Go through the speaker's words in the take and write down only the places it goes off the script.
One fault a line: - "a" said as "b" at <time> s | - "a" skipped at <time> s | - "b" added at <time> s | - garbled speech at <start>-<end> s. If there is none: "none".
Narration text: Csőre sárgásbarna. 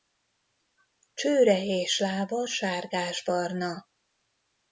- "és lába" added at 1.6 s